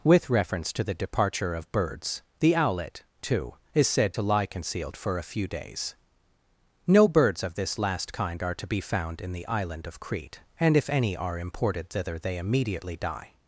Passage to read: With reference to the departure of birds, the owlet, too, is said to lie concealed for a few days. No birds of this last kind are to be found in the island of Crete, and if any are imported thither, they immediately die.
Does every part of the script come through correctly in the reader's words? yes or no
yes